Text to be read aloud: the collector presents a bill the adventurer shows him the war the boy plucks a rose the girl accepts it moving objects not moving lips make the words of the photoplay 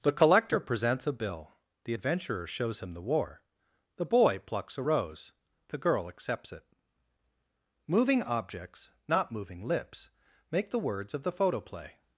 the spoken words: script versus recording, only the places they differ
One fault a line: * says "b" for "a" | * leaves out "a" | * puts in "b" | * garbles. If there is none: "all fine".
all fine